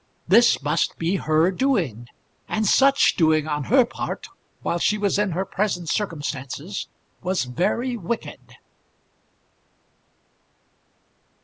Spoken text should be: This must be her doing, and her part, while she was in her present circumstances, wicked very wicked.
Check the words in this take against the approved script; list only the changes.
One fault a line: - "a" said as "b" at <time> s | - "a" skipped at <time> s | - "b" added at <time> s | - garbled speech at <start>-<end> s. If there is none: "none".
- "such doing on" added at 2.6 s
- "wicked" said as "was" at 7.2 s